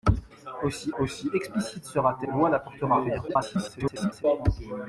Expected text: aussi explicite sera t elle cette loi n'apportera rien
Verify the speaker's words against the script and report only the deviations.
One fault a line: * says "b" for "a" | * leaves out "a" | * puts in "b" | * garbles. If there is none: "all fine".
* puts in "aussi"
* leaves out "elle cette"
* garbles